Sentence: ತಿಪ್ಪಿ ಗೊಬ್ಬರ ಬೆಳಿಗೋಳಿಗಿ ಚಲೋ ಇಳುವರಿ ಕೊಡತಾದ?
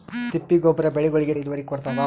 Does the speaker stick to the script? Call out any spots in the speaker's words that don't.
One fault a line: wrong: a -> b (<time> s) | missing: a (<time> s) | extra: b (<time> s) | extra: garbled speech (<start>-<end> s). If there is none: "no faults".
missing: ಚಲೋ (1.3 s)